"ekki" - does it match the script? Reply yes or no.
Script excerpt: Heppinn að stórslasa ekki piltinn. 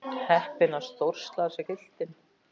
no